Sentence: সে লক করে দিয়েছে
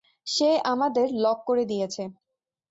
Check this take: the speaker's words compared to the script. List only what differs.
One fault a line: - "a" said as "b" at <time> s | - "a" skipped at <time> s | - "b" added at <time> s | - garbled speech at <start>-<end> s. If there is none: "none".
- "আমাদের" added at 0.6 s